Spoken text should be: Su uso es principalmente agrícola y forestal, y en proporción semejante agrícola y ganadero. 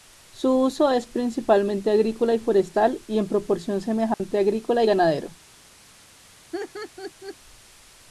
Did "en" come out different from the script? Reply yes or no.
no